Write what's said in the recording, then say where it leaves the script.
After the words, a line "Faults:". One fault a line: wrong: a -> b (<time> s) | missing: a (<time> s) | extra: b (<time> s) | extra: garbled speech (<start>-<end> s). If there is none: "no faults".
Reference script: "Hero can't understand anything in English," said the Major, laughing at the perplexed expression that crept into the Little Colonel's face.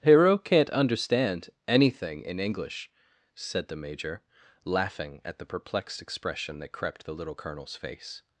"Hero can't understand anything in English," said the Major, laughing at the perplexed expression that crept the Little Colonel's face.
Faults:
missing: into (7.0 s)